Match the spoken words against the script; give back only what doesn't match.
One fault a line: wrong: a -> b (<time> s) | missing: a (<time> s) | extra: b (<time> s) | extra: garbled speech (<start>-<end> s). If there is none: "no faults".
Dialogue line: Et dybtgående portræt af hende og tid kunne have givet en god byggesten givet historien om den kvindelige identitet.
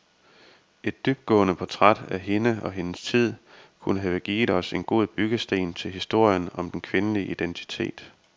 extra: hendes (2.7 s)
extra: os (4.5 s)
wrong: givet -> til (5.7 s)